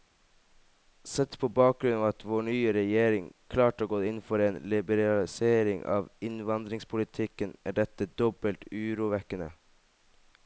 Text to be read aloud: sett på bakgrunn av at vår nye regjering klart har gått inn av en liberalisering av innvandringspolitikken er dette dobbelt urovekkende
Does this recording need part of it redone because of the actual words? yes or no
yes